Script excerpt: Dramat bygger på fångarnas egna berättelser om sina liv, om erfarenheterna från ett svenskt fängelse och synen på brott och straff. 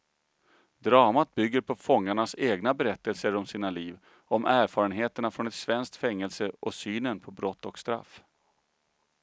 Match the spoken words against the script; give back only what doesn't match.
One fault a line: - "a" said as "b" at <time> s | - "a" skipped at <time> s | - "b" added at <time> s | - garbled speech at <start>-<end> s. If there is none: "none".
none